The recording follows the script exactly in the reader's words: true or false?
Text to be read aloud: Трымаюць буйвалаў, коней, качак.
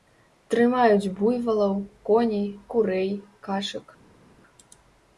false